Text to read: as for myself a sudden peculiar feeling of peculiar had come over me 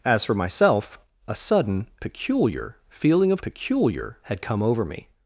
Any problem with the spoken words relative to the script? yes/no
no